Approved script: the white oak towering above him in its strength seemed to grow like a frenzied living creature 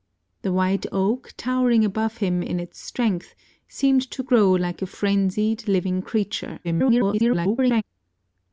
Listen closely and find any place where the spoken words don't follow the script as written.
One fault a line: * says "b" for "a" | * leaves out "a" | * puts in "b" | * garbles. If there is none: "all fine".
* garbles